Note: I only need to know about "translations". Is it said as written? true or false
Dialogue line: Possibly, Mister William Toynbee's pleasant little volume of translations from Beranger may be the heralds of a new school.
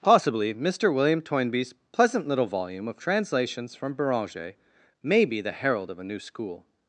true